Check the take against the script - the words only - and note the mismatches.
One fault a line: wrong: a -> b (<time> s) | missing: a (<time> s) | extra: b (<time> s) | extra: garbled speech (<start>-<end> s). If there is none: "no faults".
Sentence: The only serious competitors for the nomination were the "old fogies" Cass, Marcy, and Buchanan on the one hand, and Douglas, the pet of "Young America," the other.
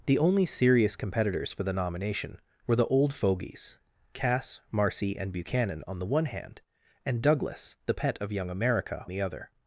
no faults